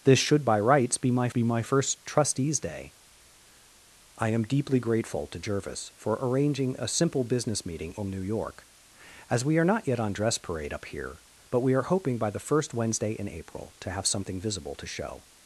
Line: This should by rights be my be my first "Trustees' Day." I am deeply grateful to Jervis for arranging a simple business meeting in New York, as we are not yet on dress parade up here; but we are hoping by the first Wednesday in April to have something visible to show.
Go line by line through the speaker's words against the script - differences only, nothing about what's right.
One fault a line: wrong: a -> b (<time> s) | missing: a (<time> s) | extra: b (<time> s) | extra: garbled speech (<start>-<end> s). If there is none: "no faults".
no faults